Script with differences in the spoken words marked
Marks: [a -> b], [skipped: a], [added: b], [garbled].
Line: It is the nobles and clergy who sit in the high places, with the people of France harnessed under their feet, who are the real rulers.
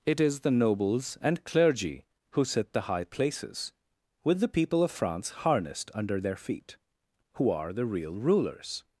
It is the nobles and clergy who sit [skipped: in] the high places, with the people of France harnessed under their feet, who are the real rulers.